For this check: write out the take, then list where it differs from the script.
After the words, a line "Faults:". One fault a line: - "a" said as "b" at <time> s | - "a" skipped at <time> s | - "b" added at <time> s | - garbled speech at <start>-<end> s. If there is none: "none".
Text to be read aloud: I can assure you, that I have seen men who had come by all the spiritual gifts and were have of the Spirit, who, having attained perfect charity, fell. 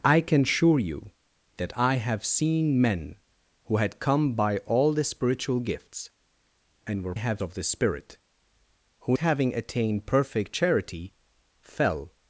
I can assure you, that I have seen men who had come by all the spiritual gifts and were have of the Spirit, who, having attained perfect charity, fell.
Faults:
none